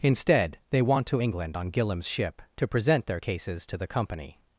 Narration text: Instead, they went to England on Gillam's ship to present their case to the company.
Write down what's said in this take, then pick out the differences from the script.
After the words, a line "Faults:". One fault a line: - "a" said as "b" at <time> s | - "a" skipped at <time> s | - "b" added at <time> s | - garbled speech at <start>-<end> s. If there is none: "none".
Instead, they want to England on Gillam's ship to present their cases to the company.
Faults:
- "went" said as "want" at 0.8 s
- "case" said as "cases" at 3.2 s